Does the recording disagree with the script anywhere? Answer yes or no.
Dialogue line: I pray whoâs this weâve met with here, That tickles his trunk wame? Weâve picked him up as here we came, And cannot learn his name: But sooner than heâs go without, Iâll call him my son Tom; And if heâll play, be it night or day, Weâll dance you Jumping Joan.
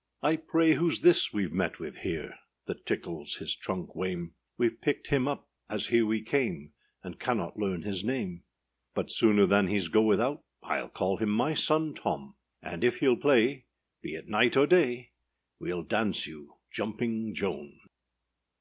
no